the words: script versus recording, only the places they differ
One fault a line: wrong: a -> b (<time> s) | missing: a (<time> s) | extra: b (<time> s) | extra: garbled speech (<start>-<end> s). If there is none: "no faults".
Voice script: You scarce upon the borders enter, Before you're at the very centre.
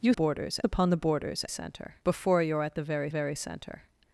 wrong: scarce -> borders (0.1 s)
wrong: enter -> centre (1.5 s)
extra: very (3.1 s)